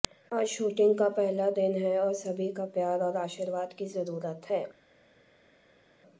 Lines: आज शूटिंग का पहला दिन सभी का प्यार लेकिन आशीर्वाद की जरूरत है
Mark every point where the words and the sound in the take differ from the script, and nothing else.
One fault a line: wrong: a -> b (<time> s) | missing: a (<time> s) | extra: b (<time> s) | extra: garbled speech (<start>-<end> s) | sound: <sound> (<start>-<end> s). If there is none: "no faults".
extra: है और (1.8 s)
wrong: लेकिन -> और (3.0 s)